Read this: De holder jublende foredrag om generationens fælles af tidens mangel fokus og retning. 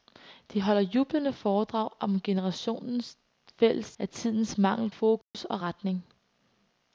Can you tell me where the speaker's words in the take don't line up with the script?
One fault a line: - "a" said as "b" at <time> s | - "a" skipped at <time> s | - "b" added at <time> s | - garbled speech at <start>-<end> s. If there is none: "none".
none